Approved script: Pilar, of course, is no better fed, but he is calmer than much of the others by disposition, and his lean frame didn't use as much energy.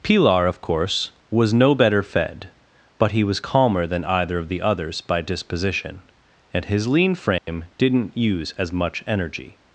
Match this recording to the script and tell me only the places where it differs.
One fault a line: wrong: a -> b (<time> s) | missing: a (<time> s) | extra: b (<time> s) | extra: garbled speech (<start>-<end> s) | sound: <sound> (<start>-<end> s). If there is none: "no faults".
wrong: is -> was (1.3 s)
wrong: is -> was (3.2 s)
wrong: much -> either (4.0 s)
sound: dropout (7.4-7.5 s)